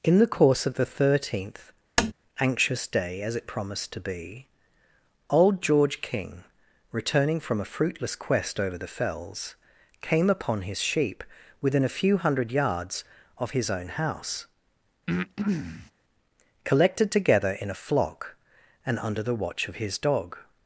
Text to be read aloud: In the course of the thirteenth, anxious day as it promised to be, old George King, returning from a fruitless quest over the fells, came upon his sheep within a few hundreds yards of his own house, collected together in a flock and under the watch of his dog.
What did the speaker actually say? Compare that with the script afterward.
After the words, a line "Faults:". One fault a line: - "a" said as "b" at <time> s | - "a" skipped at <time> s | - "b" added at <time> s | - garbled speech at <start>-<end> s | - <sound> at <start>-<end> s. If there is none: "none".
In the course of the thirteenth, anxious day as it promised to be, old George King, returning from a fruitless quest over the fells, came upon his sheep within a few hundred yards of his own house, collected together in a flock and under the watch of his dog.
Faults:
- tap at 2.0-2.1 s
- "hundreds" said as "hundred" at 12.2 s
- breath at 15.1-15.9 s